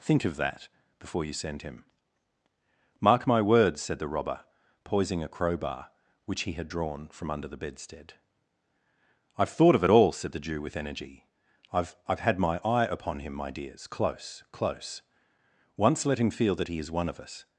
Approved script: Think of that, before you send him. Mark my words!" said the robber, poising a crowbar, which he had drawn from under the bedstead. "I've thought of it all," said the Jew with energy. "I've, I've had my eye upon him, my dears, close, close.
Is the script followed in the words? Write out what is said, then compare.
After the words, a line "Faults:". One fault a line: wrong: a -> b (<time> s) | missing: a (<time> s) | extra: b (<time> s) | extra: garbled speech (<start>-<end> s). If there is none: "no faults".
Think of that, before you send him. Mark my words!" said the robber, poising a crowbar, which he had drawn from under the bedstead. "I've thought of it all," said the Jew with energy. "I've, I've had my eye upon him, my dears, close, close. Once let him feel that he is one of us
Faults:
extra: Once let him feel that he is one of us (15.8 s)